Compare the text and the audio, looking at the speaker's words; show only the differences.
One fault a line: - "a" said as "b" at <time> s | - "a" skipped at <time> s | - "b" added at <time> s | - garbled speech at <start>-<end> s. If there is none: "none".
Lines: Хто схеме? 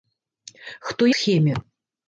none